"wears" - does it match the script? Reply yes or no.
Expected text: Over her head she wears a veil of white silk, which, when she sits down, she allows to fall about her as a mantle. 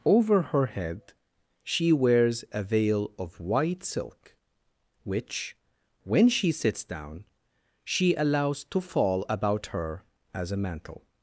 yes